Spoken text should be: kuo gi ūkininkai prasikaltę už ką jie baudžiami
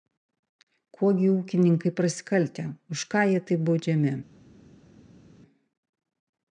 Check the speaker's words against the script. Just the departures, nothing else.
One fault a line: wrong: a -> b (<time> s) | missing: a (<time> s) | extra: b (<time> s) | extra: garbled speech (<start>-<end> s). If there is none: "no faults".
extra: taip (3.5 s)